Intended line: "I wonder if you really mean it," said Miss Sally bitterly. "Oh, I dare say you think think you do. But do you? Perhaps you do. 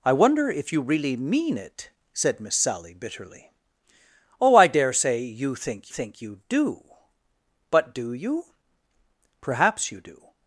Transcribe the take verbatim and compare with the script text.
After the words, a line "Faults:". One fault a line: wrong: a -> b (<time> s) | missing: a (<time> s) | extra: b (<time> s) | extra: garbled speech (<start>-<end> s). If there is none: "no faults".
"I wonder if you really mean it," said Miss Sally bitterly. "Oh, I dare say you think think you do. But do you? Perhaps you do.
Faults:
no faults